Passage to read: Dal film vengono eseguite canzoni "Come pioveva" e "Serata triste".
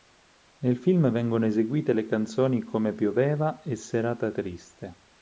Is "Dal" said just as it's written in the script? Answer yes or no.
no